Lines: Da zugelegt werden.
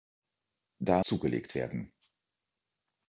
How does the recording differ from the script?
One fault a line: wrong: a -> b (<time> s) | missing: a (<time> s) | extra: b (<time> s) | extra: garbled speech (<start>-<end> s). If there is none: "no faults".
no faults